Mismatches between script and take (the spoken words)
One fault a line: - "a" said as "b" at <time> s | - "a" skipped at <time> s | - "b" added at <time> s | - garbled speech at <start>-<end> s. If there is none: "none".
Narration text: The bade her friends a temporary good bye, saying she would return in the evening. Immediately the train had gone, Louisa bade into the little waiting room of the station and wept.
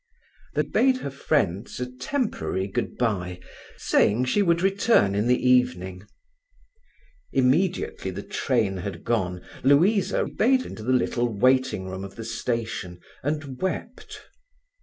none